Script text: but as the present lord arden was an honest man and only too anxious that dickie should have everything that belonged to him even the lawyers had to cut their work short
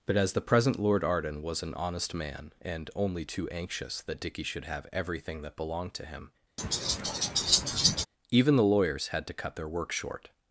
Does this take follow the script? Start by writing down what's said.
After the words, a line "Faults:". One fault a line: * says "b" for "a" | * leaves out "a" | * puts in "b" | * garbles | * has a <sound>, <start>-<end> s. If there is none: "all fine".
but as the present lord arden was an honest man and only too anxious that dickie should have everything that belonged to him even the lawyers had to cut their work short
Faults:
* has a laugh, 6.6-8.1 s